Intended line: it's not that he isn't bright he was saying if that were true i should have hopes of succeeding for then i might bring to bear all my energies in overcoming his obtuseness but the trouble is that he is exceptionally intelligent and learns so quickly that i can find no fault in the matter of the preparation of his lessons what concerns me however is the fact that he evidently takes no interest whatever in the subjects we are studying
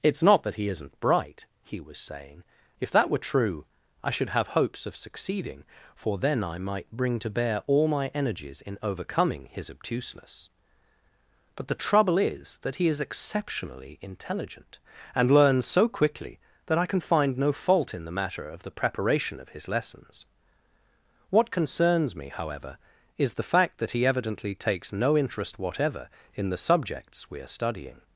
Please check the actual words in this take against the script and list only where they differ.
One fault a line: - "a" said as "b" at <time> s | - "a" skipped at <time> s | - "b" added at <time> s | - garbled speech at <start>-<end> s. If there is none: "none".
none